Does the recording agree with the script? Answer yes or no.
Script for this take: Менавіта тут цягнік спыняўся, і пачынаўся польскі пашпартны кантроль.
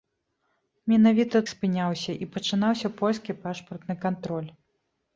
no